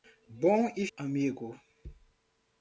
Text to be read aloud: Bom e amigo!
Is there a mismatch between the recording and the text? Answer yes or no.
no